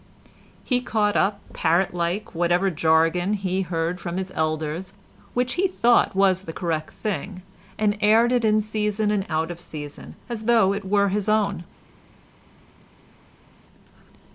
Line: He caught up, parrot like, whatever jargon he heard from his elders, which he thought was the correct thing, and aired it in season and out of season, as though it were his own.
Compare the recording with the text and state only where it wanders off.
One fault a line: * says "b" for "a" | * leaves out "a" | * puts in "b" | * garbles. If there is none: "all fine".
all fine